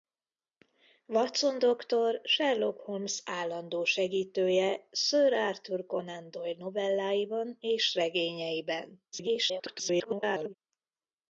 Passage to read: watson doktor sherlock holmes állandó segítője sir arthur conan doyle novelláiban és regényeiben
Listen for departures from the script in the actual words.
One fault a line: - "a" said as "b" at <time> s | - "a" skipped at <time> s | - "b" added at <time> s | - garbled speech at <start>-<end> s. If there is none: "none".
- garbled speech at 9.1-10.5 s